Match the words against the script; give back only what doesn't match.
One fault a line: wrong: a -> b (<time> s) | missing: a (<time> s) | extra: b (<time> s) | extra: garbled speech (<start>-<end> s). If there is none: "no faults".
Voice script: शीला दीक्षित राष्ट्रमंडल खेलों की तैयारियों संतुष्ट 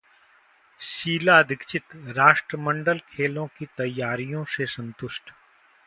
extra: से (4.5 s)